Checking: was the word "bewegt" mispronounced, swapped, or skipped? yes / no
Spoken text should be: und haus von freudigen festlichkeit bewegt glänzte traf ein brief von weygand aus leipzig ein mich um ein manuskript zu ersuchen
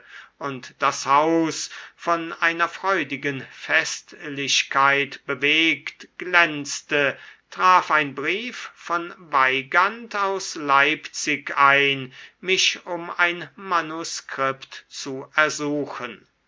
no